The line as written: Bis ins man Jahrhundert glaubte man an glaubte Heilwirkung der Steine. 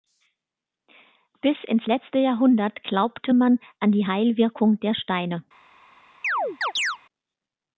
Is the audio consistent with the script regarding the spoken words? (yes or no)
no